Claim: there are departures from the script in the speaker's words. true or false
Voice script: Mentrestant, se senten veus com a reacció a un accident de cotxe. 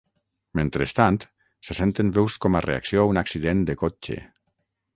false